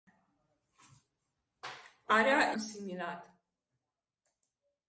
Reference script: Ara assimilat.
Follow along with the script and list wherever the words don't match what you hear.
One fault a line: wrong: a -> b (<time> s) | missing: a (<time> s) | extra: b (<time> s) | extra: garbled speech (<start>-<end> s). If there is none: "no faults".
no faults